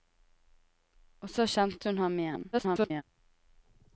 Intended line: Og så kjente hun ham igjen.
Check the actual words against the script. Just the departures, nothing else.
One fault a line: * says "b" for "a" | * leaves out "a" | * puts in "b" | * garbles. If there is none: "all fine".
* garbles